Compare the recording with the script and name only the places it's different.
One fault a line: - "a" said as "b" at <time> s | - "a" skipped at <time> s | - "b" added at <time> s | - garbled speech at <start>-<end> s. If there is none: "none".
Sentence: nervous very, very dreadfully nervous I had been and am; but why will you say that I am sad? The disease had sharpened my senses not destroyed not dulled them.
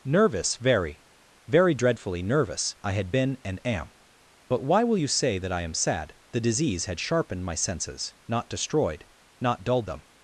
none